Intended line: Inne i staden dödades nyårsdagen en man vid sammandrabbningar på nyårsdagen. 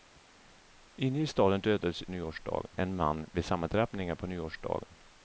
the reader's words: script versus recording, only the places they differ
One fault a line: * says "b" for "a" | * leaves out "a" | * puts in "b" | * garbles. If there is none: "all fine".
all fine